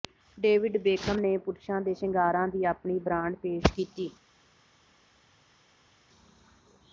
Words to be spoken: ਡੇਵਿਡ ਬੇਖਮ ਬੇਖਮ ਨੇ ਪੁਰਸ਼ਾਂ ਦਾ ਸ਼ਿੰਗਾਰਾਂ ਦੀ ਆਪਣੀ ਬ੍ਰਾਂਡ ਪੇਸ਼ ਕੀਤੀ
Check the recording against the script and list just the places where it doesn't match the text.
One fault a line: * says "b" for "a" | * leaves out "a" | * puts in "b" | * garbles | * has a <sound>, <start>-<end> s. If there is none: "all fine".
* leaves out "ਬੇਖਮ"
* says "ਦੇ" for "ਦਾ"